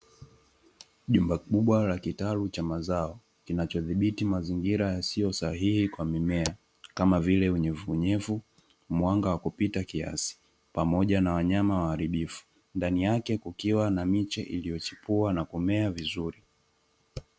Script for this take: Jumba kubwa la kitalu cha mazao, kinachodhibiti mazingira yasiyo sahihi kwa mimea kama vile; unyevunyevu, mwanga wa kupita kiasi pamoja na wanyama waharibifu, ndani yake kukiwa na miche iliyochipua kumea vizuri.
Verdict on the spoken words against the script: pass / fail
fail